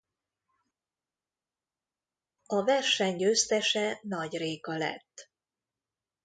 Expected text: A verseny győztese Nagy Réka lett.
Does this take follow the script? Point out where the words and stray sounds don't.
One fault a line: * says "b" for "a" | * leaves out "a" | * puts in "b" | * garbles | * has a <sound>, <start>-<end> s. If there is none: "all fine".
all fine